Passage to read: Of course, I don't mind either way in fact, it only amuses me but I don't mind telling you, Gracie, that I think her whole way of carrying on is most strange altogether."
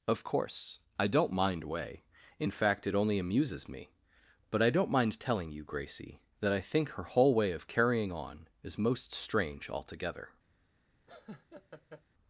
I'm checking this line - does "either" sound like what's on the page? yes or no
no